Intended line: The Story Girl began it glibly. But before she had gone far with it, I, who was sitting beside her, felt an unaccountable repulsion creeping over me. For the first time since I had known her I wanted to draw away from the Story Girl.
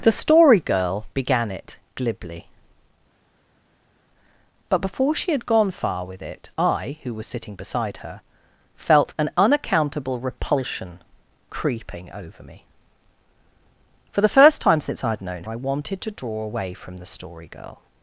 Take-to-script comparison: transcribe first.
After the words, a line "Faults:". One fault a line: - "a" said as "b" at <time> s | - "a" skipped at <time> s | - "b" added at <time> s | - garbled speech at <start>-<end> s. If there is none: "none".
The Story Girl began it glibly. But before she had gone far with it, I, who was sitting beside her, felt an unaccountable repulsion creeping over me. For the first time since I had known I wanted to draw away from the Story Girl.
Faults:
- "her" skipped at 15.4 s